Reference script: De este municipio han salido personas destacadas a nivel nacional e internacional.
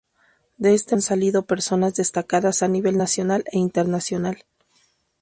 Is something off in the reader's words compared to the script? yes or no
yes